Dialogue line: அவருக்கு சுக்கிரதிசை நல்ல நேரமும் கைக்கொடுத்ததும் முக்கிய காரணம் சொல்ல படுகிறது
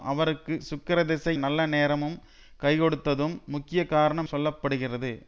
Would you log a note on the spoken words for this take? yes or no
no